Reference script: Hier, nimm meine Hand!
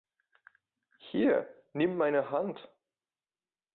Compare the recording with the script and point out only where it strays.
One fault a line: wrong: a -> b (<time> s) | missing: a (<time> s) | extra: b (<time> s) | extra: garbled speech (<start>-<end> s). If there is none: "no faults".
no faults